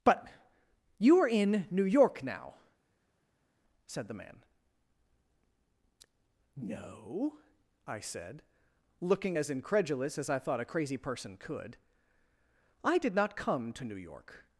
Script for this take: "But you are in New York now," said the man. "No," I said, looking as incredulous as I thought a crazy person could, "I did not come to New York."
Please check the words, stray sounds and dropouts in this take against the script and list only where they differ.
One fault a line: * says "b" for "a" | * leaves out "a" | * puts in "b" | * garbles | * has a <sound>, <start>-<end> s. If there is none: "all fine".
all fine